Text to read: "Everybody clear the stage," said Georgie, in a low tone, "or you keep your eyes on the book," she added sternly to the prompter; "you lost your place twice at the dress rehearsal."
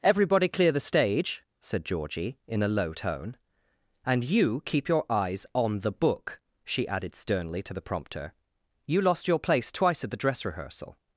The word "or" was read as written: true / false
false